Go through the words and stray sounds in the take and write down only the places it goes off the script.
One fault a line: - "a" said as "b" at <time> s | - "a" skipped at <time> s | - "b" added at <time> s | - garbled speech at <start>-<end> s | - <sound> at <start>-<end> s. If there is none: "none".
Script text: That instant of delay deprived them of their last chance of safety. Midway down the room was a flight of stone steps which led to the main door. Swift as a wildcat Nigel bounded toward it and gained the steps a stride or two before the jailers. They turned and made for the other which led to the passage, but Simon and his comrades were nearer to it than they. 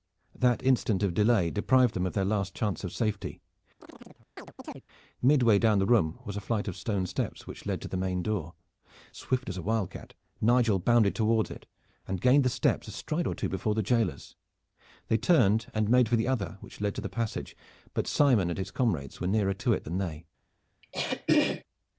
- chirp at 3.8-4.9 s
- throat clearing at 20.8-21.6 s